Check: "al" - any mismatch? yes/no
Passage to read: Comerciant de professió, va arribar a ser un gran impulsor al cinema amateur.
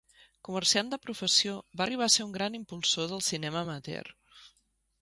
yes